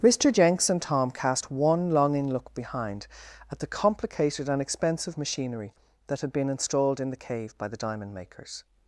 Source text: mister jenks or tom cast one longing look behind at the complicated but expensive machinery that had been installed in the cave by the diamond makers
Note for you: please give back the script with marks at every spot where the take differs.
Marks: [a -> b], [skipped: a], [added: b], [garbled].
mister jenks [or -> and] tom cast one longing look behind at the complicated [but -> and] expensive machinery that had been installed in the cave by the diamond makers